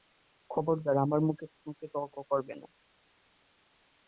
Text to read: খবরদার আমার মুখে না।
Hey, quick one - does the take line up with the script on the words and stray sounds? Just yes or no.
no